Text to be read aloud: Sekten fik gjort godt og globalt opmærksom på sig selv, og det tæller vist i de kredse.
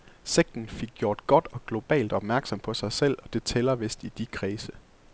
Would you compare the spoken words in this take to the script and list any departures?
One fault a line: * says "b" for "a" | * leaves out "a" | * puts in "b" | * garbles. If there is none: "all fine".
all fine